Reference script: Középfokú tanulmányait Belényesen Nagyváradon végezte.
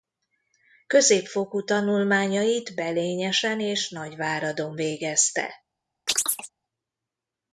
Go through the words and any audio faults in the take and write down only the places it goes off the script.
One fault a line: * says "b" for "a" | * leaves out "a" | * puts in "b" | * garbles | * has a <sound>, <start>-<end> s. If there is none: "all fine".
* puts in "és"
* has a chirp, 6.1-6.5 s